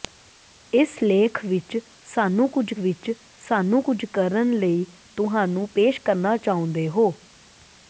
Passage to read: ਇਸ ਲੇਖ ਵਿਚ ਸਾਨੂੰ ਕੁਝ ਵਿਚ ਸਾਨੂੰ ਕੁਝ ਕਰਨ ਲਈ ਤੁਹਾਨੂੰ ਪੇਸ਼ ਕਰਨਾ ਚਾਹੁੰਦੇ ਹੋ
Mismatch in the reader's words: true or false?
false